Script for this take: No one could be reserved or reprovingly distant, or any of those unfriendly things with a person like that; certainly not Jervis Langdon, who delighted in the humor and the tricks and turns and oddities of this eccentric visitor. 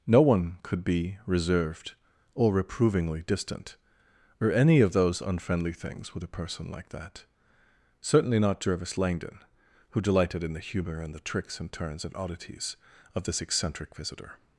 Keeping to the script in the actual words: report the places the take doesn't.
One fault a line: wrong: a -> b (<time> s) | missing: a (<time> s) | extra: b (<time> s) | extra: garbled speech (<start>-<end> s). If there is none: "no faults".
no faults